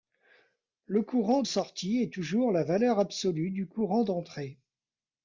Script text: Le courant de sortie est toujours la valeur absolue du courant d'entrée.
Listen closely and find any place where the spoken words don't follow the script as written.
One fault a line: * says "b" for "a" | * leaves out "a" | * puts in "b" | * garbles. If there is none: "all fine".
* leaves out "de"